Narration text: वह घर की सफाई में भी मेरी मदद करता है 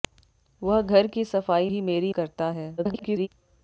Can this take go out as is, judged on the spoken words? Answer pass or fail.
fail